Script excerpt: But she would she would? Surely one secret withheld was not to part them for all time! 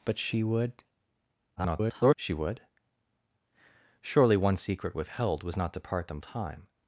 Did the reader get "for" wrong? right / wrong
wrong